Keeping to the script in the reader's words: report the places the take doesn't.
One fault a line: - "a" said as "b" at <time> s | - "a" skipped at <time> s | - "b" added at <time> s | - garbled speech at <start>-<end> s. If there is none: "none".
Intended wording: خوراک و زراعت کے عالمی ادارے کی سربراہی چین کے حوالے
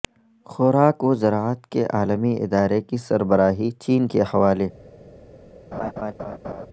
none